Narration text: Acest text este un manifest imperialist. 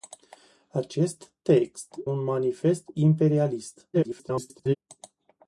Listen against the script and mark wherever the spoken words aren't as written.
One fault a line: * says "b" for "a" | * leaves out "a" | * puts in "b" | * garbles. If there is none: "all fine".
* leaves out "este"
* garbles